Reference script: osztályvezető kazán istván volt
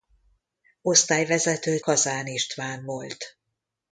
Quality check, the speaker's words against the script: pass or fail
pass